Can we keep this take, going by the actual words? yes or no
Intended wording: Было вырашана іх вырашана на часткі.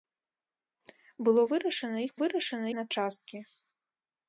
yes